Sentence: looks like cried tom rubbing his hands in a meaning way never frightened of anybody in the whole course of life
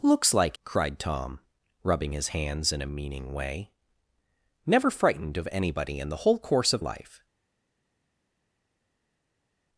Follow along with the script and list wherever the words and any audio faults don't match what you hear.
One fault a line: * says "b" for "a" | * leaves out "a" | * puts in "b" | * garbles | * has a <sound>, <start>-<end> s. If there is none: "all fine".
all fine